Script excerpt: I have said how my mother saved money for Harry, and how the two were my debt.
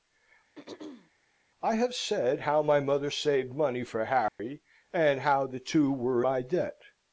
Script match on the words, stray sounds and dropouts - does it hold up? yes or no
no